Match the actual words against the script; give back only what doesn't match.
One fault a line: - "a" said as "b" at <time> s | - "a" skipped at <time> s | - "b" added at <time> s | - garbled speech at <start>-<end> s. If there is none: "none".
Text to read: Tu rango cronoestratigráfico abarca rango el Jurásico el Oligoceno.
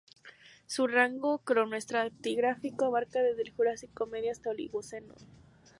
- "Tu" said as "Su" at 0.7 s
- "rango" said as "desde" at 3.2 s
- "medio hasta" added at 4.1 s